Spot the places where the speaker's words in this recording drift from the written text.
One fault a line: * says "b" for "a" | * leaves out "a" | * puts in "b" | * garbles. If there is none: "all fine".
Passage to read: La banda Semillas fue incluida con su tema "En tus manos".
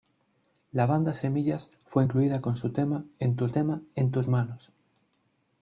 * puts in "tema En tus"